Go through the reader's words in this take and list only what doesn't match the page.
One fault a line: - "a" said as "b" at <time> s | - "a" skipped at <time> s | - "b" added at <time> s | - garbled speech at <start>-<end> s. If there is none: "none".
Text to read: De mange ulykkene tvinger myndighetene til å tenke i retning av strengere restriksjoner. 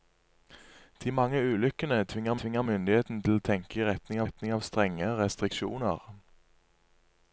- "tvinger" added at 2.4 s
- "retning" added at 4.2 s